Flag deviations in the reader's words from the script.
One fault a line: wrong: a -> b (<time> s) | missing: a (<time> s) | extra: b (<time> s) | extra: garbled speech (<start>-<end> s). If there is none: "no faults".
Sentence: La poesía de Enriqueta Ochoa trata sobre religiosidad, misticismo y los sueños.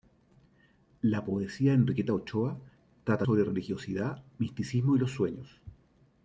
no faults